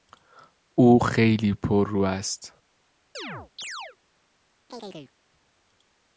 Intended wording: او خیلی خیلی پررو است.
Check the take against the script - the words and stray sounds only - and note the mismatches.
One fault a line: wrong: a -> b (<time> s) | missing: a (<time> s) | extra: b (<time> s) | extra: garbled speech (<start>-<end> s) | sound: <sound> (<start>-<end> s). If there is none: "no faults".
missing: خیلی (1.5 s)
sound: chirp (3.1-4.0 s)
sound: chirp (4.7-5.1 s)